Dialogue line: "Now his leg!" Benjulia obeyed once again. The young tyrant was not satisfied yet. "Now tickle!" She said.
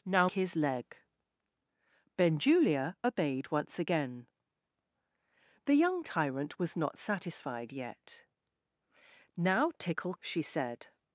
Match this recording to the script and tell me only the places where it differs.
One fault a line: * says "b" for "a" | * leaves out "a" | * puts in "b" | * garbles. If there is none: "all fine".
all fine